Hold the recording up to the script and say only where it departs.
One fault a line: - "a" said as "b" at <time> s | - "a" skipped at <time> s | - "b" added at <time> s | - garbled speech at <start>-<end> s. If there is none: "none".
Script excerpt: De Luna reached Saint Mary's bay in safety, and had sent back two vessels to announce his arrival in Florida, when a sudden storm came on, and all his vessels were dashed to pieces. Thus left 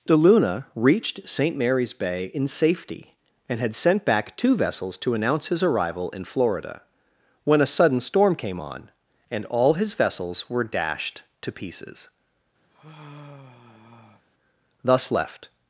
none